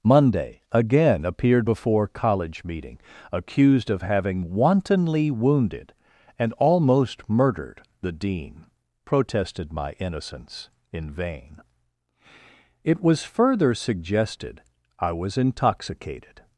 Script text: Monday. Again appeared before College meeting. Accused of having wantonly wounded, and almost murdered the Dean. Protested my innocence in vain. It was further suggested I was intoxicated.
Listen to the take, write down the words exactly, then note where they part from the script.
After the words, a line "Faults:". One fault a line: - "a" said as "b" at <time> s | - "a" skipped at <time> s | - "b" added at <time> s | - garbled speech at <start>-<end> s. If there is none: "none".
Monday. Again appeared before College meeting. Accused of having wantonly wounded, and almost murdered the Dean. Protested my innocence in vain. It was further suggested I was intoxicated.
Faults:
none